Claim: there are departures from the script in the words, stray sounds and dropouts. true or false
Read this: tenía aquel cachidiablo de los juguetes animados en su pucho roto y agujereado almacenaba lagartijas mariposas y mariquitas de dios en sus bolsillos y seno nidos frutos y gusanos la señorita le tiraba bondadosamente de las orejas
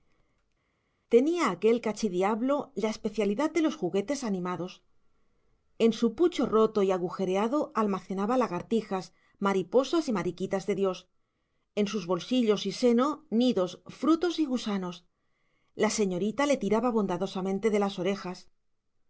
true